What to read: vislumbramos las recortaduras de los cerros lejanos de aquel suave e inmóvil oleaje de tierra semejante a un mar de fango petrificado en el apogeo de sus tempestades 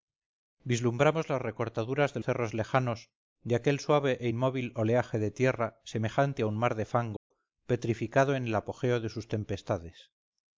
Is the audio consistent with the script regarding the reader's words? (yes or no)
no